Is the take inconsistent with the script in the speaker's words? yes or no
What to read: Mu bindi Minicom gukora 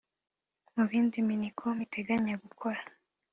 yes